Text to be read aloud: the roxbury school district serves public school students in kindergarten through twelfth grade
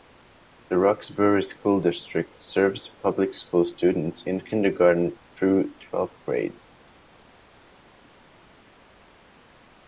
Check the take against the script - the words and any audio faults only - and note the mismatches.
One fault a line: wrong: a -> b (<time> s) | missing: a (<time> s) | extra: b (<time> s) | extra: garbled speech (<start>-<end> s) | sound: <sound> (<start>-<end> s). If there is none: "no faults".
no faults